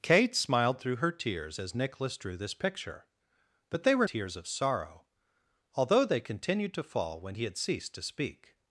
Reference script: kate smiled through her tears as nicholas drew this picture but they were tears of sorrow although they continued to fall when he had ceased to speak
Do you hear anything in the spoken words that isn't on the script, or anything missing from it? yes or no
no